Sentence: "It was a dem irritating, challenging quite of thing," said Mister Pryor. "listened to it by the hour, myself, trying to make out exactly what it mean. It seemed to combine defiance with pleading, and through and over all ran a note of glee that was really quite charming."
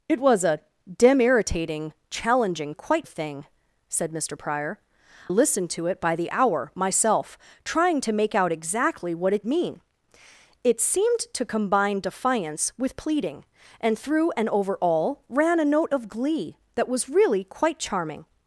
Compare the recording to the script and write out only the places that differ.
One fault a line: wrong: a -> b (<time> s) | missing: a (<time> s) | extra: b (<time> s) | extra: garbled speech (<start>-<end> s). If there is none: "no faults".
no faults